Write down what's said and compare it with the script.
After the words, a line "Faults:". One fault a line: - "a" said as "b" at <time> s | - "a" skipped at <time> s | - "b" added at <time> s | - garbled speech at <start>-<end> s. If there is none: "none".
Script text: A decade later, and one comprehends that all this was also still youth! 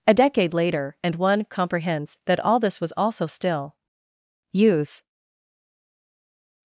A decade later, and one comprehends that all this was also still youth!
Faults:
none